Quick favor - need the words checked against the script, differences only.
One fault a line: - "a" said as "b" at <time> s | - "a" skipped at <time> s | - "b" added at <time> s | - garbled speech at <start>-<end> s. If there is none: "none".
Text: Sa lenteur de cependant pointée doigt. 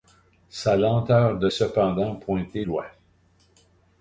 none